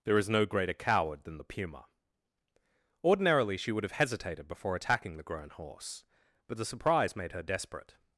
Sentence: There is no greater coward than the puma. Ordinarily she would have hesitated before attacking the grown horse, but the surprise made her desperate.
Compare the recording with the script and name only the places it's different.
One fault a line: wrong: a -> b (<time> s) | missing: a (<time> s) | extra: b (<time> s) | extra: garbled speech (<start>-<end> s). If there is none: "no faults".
no faults